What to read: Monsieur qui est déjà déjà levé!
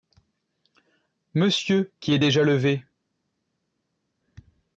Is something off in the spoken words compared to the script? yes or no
yes